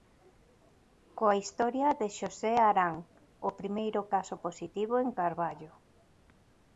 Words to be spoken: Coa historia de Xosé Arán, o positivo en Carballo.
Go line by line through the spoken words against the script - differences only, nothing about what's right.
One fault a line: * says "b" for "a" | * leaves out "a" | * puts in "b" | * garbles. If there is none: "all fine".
* puts in "primeiro caso"